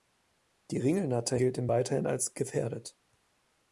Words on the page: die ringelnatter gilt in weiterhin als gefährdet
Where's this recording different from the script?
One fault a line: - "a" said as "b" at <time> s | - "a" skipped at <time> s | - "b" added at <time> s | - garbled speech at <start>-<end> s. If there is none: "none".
none